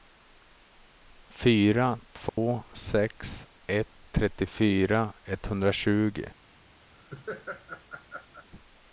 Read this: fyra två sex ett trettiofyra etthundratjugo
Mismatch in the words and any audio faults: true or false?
true